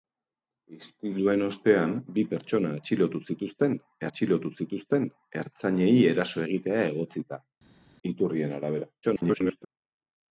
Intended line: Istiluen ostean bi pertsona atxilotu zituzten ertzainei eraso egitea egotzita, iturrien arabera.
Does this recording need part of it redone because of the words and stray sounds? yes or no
yes